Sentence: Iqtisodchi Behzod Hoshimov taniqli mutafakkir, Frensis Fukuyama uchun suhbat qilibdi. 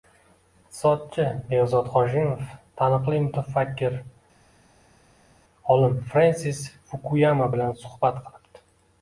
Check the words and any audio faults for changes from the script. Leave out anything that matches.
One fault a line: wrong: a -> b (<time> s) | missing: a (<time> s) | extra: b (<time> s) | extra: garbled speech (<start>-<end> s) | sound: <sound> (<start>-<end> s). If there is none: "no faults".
extra: olim (5.8 s)
wrong: uchun -> bilan (7.5 s)